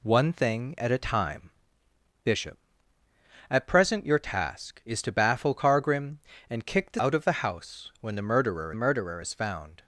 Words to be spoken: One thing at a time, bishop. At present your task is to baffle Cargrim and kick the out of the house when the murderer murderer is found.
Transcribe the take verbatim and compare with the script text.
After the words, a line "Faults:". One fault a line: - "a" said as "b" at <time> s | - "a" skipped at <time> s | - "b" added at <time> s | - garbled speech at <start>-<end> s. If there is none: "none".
One thing at a time, bishop. At present your task is to baffle Cargrim and kick the out of the house when the murderer murderer is found.
Faults:
none